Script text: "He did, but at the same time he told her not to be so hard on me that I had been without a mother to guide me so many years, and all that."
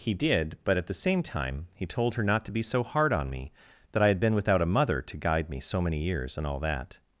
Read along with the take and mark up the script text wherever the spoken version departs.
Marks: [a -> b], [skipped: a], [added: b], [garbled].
"He did, but at the same time he told her not to be so hard on me that I had been without a mother to guide me so many years, and all that."